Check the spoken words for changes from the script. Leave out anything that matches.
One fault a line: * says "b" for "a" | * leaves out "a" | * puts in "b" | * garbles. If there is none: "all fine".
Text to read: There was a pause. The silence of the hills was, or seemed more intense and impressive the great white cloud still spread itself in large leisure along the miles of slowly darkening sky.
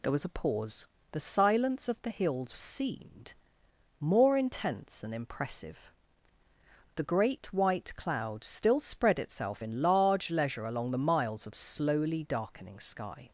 * leaves out "was or"